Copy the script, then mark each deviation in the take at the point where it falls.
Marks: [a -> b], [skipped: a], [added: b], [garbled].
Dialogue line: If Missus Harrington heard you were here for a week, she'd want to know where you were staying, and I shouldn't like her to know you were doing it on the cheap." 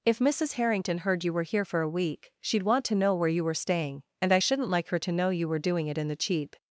If Missus Harrington heard you were here for a week, she'd want to know where you were staying, and I shouldn't like her to know you were doing it [on -> in] the cheap."